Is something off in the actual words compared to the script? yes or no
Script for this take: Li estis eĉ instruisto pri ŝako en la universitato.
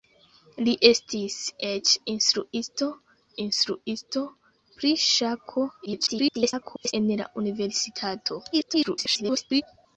yes